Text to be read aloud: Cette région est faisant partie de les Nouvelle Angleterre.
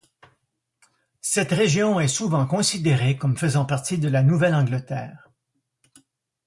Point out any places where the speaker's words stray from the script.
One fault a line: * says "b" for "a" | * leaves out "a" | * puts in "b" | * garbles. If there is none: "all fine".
* puts in "souvent considérée comme"
* says "la" for "les"